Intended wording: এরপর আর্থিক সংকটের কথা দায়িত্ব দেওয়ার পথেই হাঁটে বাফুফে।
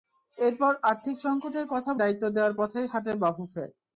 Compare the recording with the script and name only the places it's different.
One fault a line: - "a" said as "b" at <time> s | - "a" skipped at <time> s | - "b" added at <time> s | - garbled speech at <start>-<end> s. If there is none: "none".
none